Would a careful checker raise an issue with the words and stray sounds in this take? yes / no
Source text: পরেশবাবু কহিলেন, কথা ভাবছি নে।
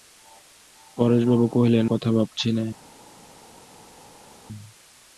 no